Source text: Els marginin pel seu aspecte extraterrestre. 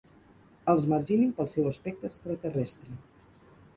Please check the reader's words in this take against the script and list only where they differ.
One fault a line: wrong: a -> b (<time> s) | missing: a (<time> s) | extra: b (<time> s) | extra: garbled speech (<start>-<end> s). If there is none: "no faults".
no faults